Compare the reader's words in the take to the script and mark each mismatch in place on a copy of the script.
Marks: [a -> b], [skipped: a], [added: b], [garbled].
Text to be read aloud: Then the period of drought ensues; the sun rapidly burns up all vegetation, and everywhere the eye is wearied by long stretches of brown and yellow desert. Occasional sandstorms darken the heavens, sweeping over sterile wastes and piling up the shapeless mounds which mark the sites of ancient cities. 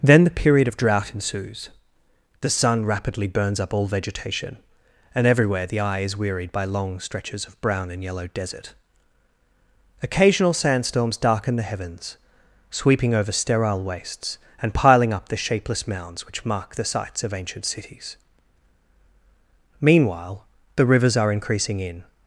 Then the period of drought ensues; the sun rapidly burns up all vegetation, and everywhere the eye is wearied by long stretches of brown and yellow desert. Occasional sandstorms darken the heavens, sweeping over sterile wastes and piling up the shapeless mounds which mark the sites of ancient cities. [added: Meanwhile the rivers are increasing in]